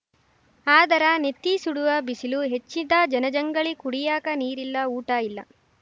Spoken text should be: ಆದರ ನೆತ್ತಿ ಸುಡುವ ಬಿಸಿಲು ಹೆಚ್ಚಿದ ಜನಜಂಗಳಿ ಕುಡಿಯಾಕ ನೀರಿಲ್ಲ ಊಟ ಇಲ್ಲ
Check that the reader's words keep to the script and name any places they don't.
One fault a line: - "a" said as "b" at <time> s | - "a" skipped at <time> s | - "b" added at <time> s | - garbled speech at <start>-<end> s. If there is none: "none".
none